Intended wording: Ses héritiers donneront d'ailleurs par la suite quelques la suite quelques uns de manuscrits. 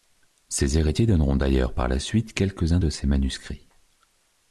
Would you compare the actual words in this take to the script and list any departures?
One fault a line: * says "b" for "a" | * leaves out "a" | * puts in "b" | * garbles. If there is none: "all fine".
* leaves out "la suite quelques"
* puts in "ses"